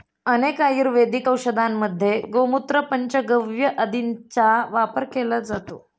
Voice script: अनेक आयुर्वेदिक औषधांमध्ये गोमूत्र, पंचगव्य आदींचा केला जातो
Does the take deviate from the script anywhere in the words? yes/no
yes